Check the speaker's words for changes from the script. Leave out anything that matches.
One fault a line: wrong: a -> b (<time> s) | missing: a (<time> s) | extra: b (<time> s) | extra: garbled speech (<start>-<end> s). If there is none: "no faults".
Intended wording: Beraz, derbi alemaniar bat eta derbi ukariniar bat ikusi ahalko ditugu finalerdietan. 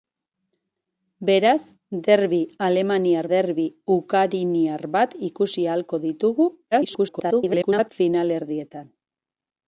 missing: bat eta (3.3 s)
extra: garbled speech (6.7-7.9 s)